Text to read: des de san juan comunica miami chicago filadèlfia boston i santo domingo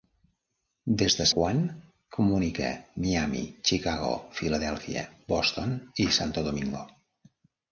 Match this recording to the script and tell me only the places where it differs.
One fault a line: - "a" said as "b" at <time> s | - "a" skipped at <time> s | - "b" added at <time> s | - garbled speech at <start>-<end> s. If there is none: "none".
- "san" skipped at 1.3 s